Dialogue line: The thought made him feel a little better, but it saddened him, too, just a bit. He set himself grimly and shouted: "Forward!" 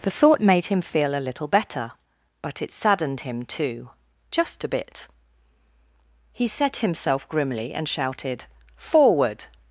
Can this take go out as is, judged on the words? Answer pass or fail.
pass